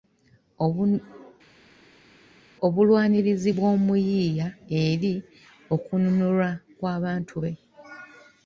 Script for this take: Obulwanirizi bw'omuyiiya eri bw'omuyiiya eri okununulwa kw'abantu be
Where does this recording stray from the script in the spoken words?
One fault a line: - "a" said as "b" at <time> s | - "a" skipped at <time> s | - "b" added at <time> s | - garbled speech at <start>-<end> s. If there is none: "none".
- "bw'omuyiiya eri" skipped at 5.1 s